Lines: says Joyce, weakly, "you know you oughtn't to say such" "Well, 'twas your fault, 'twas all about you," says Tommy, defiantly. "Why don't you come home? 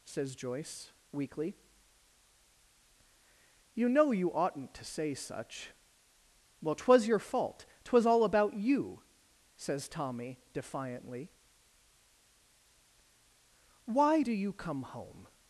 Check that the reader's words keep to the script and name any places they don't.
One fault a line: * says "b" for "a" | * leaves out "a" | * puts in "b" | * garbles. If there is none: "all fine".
* says "do" for "don't"